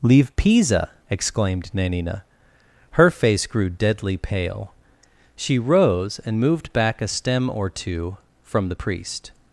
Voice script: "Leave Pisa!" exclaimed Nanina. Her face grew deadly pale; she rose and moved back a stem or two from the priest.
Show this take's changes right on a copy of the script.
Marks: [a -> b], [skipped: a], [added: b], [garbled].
"Leave Pisa!" exclaimed Nanina. Her face grew deadly pale; she rose and moved back a stem or two from the priest.